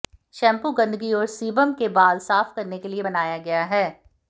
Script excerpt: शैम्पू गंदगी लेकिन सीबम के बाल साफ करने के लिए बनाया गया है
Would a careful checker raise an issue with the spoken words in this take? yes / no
yes